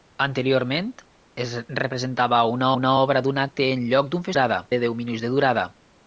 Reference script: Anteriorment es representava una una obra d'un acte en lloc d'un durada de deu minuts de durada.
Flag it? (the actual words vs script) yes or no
no